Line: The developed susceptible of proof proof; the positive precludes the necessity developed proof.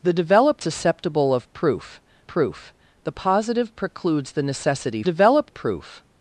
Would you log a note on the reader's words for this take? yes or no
no